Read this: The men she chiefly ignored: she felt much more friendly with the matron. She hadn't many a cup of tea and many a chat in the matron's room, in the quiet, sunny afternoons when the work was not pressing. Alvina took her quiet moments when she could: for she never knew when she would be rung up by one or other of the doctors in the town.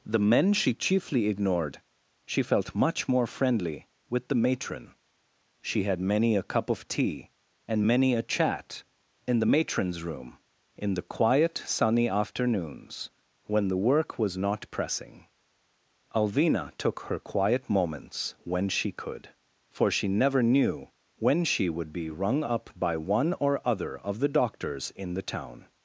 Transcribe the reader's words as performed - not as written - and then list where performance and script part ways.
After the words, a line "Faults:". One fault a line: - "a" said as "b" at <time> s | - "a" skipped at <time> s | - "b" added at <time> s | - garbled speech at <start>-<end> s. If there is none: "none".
The men she chiefly ignored: she felt much more friendly with the matron. She had many a cup of tea and many a chat in the matron's room, in the quiet, sunny afternoons when the work was not pressing. Alvina took her quiet moments when she could: for she never knew when she would be rung up by one or other of the doctors in the town.
Faults:
- "hadn't" said as "had" at 5.8 s